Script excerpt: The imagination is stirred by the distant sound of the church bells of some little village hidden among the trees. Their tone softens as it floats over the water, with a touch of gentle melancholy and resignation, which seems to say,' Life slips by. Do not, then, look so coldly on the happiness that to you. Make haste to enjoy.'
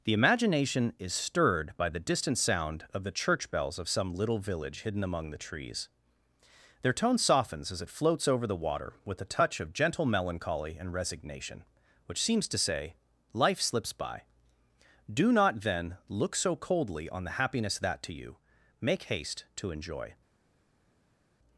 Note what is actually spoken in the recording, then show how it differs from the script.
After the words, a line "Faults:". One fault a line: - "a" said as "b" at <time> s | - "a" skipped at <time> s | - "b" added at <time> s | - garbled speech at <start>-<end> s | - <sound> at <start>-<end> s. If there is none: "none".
The imagination is stirred by the distant sound of the church bells of some little village hidden among the trees. Their tone softens as it floats over the water, with a touch of gentle melancholy and resignation, which seems to say,' Life slips by. Do not, then, look so coldly on the happiness that to you. Make haste to enjoy.'
Faults:
none